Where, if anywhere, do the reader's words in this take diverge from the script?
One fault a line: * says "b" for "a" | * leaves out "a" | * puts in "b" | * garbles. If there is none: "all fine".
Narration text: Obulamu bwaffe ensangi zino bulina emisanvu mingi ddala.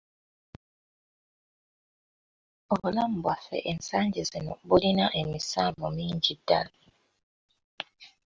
all fine